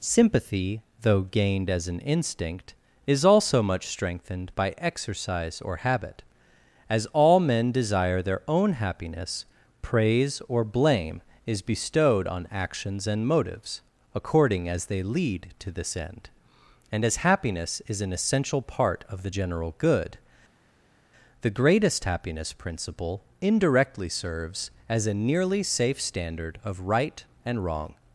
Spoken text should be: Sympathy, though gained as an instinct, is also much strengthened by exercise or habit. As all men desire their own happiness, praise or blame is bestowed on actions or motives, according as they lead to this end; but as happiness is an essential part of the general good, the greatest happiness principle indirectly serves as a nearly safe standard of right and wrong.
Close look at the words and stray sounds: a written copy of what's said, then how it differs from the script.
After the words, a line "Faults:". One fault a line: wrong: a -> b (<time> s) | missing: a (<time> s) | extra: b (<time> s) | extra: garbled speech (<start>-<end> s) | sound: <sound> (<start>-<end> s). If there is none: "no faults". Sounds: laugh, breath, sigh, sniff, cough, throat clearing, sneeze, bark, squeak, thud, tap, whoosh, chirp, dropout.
Sympathy, though gained as an instinct, is also much strengthened by exercise or habit. As all men desire their own happiness, praise or blame is bestowed on actions and motives, according as they lead to this end; and as happiness is an essential part of the general good, the greatest happiness principle indirectly serves as a nearly safe standard of right and wrong.
Faults:
wrong: or -> and (13.1 s)
wrong: but -> and (16.9 s)